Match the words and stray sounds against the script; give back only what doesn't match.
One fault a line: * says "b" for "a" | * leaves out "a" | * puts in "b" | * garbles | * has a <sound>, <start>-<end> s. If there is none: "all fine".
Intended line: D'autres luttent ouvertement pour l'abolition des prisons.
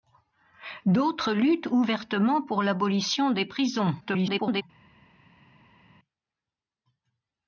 * garbles